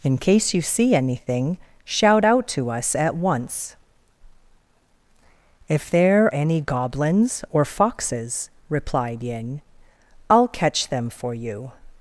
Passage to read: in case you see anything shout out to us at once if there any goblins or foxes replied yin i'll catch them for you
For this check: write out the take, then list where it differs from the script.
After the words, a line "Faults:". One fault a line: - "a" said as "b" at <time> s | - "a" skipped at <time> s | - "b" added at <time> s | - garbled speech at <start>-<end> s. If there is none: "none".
in case you see anything shout out to us at once if there any goblins or foxes replied yin i'll catch them for you
Faults:
none